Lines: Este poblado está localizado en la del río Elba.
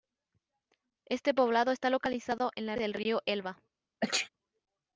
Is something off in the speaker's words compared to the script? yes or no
no